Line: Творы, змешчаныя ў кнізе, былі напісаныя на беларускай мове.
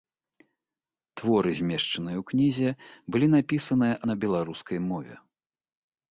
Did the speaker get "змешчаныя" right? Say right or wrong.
right